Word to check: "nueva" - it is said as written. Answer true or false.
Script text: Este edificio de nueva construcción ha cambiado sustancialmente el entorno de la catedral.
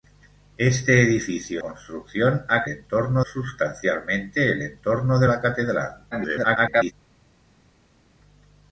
false